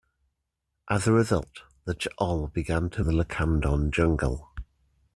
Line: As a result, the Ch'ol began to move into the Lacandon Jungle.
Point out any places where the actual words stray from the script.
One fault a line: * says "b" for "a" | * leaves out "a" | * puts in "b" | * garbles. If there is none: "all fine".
* leaves out "move into"